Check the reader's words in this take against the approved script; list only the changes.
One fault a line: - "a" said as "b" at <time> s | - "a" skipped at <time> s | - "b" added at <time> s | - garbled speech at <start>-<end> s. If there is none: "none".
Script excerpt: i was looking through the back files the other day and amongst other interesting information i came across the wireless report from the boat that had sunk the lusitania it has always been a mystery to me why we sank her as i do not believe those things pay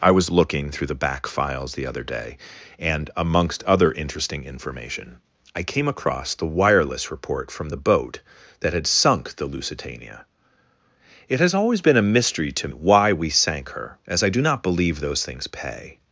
- "me" skipped at 12.7 s